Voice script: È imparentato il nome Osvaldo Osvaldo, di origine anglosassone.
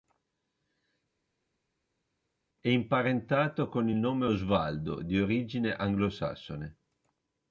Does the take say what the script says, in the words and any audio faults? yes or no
no